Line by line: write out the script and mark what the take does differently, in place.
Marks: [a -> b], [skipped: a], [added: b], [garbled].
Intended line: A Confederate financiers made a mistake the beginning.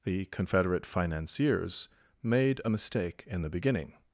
[A -> The] Confederate financiers made a mistake [added: in] the beginning.